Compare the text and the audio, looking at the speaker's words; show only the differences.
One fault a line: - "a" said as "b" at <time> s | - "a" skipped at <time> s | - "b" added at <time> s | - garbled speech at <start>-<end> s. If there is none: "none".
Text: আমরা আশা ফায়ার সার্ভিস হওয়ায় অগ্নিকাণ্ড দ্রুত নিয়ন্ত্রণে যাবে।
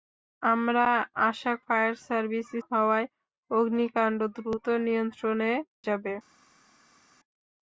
none